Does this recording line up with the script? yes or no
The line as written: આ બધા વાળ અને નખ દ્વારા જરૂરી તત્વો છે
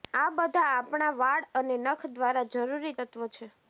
no